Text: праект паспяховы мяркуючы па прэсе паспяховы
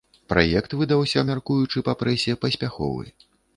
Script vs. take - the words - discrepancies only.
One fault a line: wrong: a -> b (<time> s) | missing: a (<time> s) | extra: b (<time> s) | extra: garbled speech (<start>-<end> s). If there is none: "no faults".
wrong: паспяховы -> выдаўся (0.8 s)